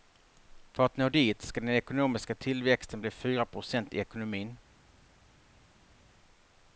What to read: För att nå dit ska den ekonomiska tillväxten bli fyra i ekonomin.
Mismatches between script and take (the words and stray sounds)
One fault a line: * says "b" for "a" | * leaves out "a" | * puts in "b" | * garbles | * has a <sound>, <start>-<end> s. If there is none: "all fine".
* puts in "procent"